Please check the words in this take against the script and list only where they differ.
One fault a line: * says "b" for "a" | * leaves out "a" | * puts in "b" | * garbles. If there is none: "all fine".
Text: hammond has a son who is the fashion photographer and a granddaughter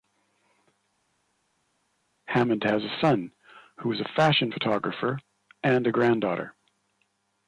* says "a" for "the"